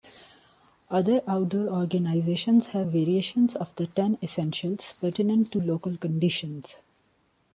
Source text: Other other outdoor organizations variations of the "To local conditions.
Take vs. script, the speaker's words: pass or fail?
fail